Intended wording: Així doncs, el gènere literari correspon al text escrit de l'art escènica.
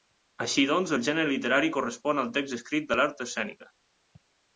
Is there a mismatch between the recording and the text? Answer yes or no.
no